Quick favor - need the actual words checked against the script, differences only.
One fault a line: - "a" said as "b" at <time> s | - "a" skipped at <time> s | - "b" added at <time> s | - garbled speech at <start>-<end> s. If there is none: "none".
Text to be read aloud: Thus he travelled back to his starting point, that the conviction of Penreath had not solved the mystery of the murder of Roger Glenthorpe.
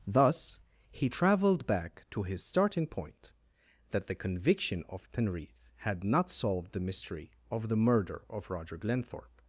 none